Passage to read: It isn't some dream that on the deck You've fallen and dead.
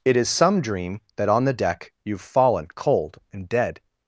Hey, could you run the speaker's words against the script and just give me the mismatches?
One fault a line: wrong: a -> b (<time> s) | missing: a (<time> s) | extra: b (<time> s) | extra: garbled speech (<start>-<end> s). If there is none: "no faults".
wrong: isn't -> is (0.2 s)
extra: cold (2.7 s)